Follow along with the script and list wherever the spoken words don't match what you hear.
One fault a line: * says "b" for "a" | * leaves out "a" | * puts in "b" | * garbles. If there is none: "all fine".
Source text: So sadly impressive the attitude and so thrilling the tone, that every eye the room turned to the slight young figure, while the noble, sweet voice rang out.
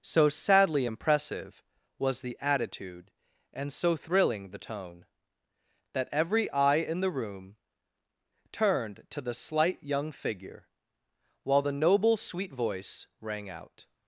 * puts in "was"
* puts in "in"